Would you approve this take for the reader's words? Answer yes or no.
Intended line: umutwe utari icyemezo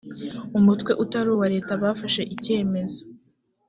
no